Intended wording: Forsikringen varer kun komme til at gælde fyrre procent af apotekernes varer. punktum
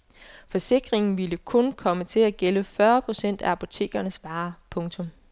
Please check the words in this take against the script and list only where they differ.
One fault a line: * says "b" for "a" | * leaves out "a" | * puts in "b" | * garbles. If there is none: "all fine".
* says "ville" for "varer"